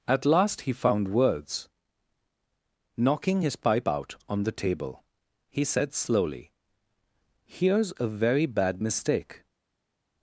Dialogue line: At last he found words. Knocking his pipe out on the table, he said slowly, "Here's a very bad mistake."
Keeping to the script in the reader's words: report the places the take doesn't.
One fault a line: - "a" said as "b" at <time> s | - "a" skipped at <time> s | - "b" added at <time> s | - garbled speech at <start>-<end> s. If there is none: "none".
none